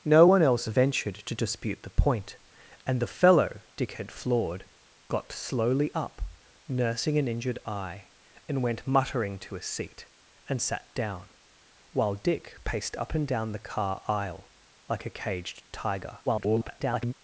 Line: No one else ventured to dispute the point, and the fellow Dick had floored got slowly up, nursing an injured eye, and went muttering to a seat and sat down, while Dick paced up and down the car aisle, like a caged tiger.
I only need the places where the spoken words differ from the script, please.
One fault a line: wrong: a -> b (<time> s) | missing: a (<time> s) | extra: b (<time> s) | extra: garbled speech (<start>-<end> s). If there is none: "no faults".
extra: garbled speech (16.3-17.1 s)